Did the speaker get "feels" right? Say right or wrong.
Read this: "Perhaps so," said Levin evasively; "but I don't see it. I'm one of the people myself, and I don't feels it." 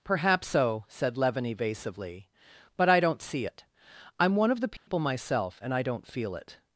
wrong